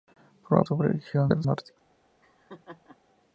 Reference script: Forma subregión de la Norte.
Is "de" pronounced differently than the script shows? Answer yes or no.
no